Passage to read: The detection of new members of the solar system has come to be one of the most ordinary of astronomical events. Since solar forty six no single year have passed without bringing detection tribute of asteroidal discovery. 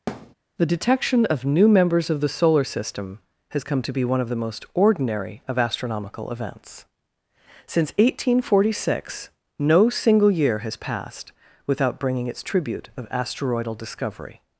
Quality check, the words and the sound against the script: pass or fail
fail